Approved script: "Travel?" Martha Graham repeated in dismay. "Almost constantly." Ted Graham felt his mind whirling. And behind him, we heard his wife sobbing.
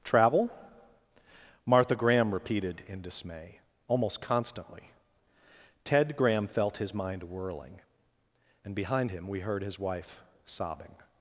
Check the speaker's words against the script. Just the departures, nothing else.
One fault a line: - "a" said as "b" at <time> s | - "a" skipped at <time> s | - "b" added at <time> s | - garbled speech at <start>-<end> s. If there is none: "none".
none